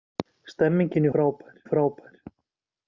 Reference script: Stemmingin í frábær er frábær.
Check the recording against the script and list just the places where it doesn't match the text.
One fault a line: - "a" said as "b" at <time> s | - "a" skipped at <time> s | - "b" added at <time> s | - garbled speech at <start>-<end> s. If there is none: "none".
none